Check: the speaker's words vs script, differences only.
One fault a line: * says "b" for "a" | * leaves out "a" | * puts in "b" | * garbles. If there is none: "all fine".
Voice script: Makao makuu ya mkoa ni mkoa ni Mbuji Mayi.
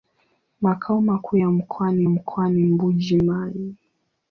all fine